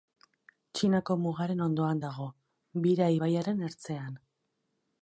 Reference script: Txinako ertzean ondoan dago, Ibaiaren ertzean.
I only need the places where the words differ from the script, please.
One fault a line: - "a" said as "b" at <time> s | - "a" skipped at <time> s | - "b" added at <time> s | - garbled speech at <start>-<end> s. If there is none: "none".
- "ertzean" said as "mugaren" at 1.2 s
- "Bira" added at 2.9 s